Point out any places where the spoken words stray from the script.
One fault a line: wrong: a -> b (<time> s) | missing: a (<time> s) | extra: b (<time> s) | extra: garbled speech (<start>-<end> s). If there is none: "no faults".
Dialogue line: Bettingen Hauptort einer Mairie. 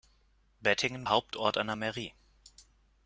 no faults